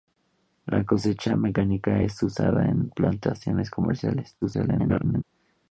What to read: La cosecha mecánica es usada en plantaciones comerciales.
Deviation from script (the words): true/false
true